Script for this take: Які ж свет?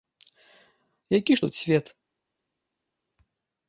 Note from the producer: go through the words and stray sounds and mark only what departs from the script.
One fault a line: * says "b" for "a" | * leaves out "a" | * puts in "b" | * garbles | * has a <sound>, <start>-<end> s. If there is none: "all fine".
* puts in "тут"